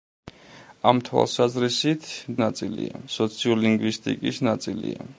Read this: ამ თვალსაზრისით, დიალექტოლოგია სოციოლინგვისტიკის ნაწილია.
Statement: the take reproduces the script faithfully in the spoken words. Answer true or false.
false